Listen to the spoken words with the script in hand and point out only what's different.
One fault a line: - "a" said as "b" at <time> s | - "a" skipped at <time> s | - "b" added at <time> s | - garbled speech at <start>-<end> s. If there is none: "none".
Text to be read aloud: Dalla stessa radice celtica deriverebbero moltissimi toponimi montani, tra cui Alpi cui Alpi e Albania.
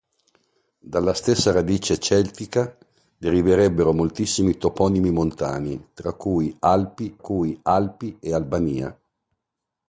none